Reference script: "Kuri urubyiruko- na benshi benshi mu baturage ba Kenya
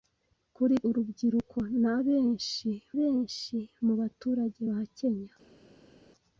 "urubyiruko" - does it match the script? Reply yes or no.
yes